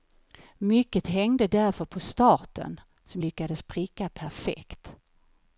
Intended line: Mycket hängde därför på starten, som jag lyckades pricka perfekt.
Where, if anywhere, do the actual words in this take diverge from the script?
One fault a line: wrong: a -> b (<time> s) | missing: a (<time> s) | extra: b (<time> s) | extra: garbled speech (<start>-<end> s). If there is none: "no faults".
missing: jag (3.2 s)